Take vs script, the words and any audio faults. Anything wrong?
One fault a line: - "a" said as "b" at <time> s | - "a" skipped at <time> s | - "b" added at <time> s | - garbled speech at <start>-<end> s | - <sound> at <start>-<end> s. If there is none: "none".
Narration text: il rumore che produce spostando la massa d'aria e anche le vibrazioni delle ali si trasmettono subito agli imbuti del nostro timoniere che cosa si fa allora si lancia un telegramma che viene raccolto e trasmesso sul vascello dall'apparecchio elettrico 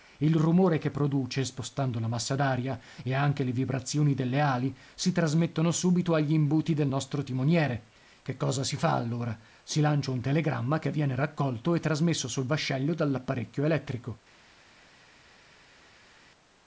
none